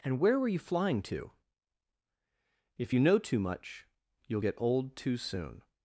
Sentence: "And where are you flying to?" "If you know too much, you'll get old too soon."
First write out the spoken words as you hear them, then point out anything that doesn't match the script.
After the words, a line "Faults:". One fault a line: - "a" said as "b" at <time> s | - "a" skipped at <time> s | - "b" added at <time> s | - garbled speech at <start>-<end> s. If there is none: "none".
"And where were you flying to?" "If you know too much, you'll get old too soon."
Faults:
- "are" said as "were" at 0.4 s